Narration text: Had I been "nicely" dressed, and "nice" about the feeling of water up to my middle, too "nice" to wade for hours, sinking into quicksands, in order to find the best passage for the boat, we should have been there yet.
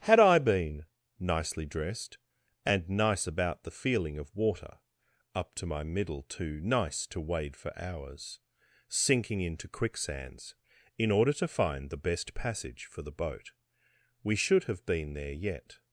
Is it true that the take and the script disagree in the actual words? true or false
false